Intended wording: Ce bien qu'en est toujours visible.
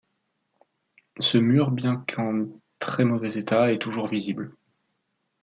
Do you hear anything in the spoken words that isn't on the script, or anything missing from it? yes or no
yes